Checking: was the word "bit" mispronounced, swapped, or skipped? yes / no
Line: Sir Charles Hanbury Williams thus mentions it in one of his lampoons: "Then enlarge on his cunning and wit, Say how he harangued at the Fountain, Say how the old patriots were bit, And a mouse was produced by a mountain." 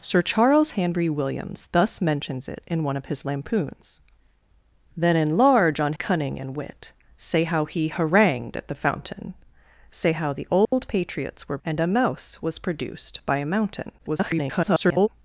yes